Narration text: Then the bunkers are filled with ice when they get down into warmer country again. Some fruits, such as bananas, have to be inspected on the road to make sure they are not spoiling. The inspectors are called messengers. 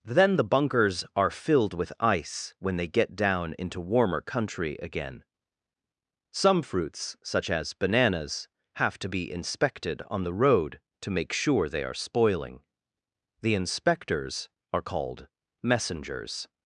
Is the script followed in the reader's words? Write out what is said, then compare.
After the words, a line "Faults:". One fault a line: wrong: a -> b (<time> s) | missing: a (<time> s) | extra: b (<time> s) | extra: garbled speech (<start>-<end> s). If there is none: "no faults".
Then the bunkers are filled with ice when they get down into warmer country again. Some fruits, such as bananas, have to be inspected on the road to make sure they are spoiling. The inspectors are called messengers.
Faults:
missing: not (11.9 s)